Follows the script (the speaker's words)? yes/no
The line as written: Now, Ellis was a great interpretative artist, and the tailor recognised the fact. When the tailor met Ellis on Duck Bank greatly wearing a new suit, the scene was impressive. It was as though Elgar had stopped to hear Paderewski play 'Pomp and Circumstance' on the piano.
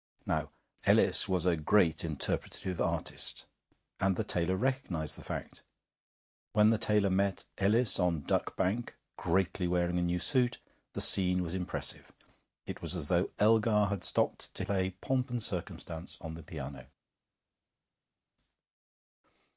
no